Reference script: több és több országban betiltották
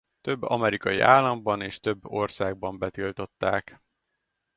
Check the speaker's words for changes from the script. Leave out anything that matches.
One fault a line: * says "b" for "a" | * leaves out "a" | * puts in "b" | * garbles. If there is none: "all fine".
* puts in "amerikai államban"